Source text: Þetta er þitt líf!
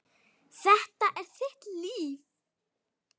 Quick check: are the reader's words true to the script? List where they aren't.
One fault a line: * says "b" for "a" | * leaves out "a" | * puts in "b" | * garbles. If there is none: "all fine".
all fine